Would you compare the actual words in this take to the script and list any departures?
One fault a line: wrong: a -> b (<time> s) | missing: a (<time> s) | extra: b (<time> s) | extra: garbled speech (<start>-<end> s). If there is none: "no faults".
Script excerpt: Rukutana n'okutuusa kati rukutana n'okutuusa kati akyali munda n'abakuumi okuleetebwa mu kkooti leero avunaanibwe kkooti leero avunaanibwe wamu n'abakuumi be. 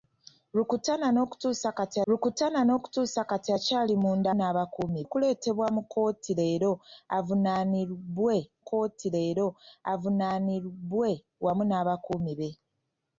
no faults